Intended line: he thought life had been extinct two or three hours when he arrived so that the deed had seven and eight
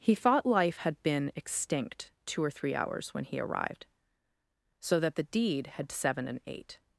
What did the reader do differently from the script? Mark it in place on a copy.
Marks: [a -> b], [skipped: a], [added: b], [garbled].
he thought life had been extinct two or three hours when he arrived so that the deed had seven and eight